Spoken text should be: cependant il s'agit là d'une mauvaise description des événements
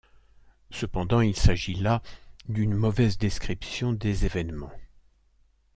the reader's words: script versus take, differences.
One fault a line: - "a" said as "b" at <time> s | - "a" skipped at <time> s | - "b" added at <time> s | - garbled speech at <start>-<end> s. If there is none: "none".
none